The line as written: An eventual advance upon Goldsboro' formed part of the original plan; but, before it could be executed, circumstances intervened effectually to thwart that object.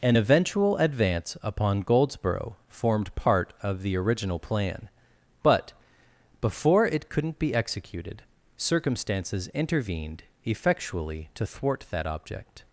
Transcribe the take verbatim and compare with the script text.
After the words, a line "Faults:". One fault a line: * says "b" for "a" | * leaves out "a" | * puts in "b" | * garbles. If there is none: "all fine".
An eventual advance upon Goldsboro' formed part of the original plan; but, before it couldn't be executed, circumstances intervened effectually to thwart that object.
Faults:
* says "couldn't" for "could"